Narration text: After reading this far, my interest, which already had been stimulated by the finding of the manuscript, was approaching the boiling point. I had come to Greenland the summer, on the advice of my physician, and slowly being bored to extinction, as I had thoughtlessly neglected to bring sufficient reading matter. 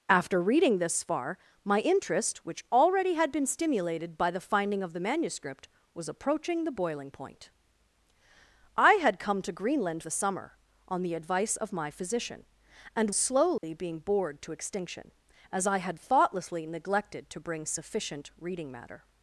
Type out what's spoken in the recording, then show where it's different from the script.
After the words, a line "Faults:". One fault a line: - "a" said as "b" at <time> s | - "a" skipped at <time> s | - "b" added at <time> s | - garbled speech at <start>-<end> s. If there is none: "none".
After reading this far, my interest, which already had been stimulated by the finding of the manuscript, was approaching the boiling point. I had come to Greenland the summer, on the advice of my physician, and slowly being bored to extinction, as I had thoughtlessly neglected to bring sufficient reading matter.
Faults:
none